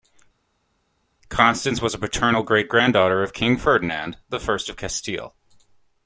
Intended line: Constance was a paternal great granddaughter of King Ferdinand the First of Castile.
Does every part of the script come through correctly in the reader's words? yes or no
yes